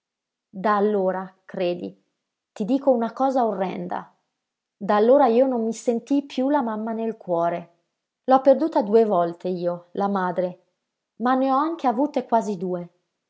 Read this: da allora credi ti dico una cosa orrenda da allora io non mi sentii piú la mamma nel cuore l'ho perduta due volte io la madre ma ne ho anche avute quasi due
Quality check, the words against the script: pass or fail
pass